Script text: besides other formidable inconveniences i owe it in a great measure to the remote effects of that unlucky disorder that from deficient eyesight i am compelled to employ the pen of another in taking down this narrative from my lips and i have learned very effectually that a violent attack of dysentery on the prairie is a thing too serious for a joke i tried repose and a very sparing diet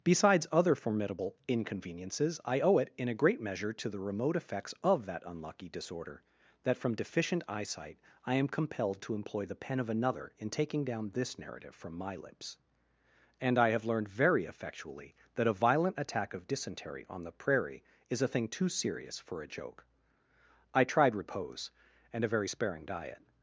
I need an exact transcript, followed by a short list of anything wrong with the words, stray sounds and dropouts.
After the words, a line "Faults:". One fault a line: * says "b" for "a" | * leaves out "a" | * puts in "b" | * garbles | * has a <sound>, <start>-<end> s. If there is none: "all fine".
besides other formidable inconveniences i owe it in a great measure to the remote effects of that unlucky disorder that from deficient eyesight i am compelled to employ the pen of another in taking down this narrative from my lips and i have learned very effectually that a violent attack of dysentery on the prairie is a thing too serious for a joke i tried repose and a very sparing diet
Faults:
all fine